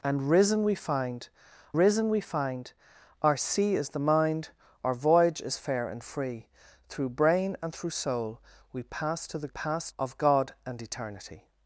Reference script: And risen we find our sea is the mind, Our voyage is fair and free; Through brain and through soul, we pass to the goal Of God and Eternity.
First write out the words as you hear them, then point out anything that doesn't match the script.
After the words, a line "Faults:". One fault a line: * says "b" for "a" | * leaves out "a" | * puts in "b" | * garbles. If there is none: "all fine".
And risen we find risen we find our sea is the mind, Our voyage is fair and free; Through brain and through soul, we pass to the pass Of God and Eternity.
Faults:
* puts in "risen we find"
* says "pass" for "goal"